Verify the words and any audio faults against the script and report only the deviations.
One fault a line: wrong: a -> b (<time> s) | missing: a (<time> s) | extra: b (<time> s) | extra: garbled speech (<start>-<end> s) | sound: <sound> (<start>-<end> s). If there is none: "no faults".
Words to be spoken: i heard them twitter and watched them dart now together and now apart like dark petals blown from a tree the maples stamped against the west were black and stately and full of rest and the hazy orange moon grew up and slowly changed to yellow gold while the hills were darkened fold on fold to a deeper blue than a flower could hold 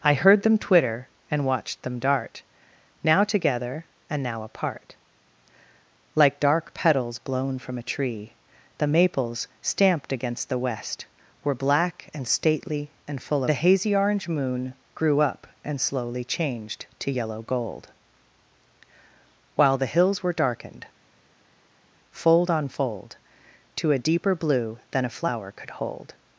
missing: of rest and (13.4 s)